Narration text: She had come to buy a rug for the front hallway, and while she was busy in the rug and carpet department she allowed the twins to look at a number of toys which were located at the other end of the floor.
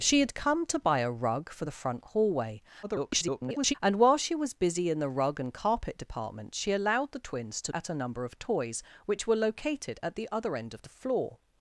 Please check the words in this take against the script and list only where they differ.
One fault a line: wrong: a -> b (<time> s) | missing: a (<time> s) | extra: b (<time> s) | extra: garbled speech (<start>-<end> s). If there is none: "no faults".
extra: garbled speech (2.8-3.7 s)
missing: look (7.7 s)